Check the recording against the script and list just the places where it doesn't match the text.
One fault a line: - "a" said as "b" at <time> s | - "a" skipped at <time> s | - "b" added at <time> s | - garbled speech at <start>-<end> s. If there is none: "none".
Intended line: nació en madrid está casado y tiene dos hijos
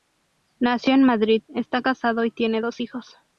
none